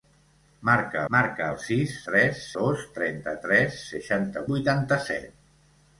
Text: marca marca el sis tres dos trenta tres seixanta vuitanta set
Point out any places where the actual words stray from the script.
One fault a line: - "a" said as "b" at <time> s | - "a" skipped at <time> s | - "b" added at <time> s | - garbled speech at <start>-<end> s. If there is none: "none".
none